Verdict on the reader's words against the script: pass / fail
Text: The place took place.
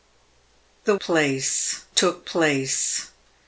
pass